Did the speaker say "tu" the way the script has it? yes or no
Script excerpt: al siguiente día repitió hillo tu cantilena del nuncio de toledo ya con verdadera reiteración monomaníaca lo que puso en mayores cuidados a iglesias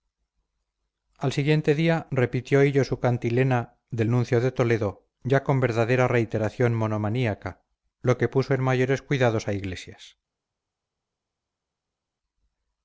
no